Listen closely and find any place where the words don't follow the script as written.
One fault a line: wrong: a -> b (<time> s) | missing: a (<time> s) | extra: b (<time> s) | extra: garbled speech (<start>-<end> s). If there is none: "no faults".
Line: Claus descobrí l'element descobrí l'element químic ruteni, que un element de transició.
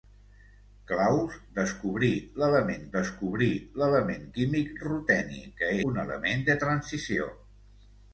no faults